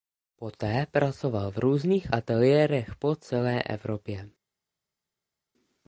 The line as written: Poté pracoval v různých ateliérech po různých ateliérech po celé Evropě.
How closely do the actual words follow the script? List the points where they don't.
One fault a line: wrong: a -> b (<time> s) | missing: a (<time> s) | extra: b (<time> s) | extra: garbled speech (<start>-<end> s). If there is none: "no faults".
missing: různých ateliérech po (3.1 s)